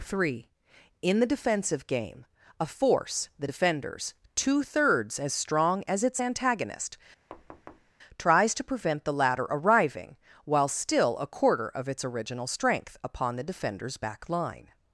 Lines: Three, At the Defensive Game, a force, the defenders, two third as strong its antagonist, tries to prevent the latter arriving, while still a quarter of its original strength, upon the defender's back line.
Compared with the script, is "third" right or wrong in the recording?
wrong